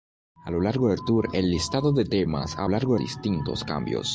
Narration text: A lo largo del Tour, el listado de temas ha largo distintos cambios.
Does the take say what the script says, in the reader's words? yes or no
yes